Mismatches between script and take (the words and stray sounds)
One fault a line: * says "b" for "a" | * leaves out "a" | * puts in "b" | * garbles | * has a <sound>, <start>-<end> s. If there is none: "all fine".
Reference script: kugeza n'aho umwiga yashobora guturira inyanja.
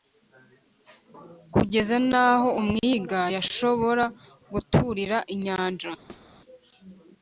* has a thud, 6.1-6.3 s